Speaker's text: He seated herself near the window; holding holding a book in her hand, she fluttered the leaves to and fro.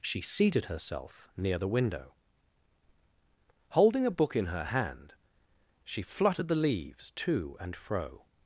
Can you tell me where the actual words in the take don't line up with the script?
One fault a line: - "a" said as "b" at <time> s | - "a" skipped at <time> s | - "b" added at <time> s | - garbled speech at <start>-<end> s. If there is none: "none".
- "He" said as "She" at 0.0 s
- "holding" skipped at 4.1 s